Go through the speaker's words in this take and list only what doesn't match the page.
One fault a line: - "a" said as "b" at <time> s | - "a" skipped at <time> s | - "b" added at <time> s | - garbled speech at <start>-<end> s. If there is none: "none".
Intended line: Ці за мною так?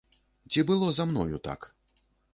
- "было" added at 0.7 s